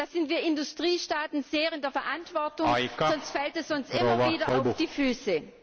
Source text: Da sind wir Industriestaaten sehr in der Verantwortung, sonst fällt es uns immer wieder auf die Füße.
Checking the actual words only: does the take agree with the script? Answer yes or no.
yes